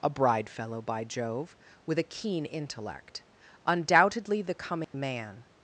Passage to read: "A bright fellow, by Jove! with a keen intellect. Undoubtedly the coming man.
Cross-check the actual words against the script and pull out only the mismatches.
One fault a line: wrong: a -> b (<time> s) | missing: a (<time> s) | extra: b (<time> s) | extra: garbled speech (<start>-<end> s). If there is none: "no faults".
wrong: bright -> bride (0.1 s)